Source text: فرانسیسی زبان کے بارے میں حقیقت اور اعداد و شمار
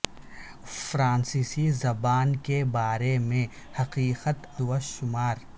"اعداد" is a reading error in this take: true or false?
true